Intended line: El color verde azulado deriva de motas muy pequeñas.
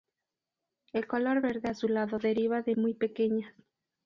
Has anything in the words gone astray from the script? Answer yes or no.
yes